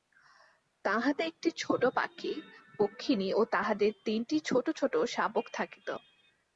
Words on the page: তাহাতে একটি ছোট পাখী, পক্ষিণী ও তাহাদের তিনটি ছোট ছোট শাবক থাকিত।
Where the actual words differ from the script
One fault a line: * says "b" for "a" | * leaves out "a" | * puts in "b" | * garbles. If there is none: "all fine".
all fine